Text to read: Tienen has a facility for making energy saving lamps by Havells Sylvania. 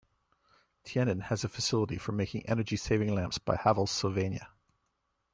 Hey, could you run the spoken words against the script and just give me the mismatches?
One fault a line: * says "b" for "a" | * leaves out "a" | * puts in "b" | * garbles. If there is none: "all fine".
all fine